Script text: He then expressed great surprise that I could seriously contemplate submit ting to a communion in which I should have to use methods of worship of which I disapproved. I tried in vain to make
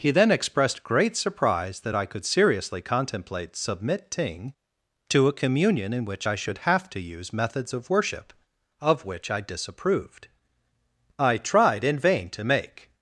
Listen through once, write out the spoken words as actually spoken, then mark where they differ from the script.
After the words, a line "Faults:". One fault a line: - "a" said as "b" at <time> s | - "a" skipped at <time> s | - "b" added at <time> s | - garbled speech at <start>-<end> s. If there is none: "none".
He then expressed great surprise that I could seriously contemplate submit ting to a communion in which I should have to use methods of worship of which I disapproved. I tried in vain to make
Faults:
none